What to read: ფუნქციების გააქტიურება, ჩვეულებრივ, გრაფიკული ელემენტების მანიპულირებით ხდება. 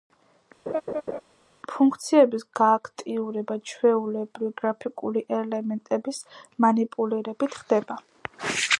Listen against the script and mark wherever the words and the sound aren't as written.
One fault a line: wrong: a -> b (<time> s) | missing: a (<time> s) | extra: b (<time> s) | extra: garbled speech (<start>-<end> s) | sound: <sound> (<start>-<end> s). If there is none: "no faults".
sound: laugh (0.7-1.2 s)